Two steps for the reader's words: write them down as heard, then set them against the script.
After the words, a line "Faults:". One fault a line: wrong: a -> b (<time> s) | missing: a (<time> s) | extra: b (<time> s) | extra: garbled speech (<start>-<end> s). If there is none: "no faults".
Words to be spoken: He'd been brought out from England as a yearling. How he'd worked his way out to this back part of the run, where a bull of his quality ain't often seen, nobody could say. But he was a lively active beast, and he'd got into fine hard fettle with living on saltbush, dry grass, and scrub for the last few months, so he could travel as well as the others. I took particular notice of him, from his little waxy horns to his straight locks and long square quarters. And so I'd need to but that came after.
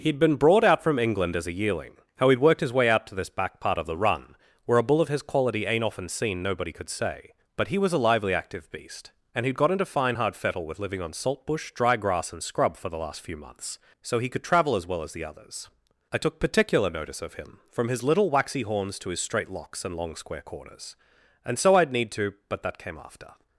He'd been brought out from England as a yearling. How he'd worked his way out to this back part of the run, where a bull of his quality ain't often seen, nobody could say. But he was a lively active beast, and he'd got into fine hard fettle with living on saltbush, dry grass, and scrub for the last few months, so he could travel as well as the others. I took particular notice of him, from his little waxy horns to his straight locks and long square corners. And so I'd need to but that came after.
Faults:
wrong: quarters -> corners (20.4 s)